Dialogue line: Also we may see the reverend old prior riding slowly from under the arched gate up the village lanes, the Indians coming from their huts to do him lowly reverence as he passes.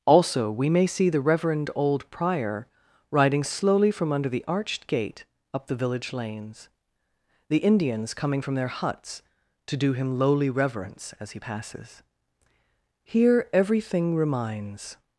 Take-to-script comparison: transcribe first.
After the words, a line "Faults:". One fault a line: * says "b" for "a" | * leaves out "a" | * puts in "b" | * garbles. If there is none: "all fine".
Also we may see the reverend old prior riding slowly from under the arched gate up the village lanes, the Indians coming from their huts to do him lowly reverence as he passes. Here, everything reminds
Faults:
* puts in "Here everything reminds"